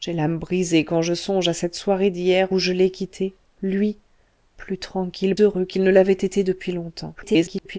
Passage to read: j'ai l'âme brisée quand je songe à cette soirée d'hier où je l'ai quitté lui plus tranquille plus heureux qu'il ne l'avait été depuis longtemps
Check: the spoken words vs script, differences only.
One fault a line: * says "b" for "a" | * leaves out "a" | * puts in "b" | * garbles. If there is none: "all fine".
* leaves out "plus"
* garbles